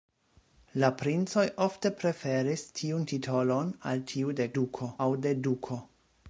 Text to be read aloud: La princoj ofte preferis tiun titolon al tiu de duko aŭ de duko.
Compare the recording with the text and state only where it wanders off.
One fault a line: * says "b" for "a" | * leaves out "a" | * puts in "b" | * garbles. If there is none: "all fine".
all fine